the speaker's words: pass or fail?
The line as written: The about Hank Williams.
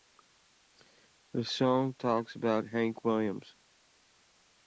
fail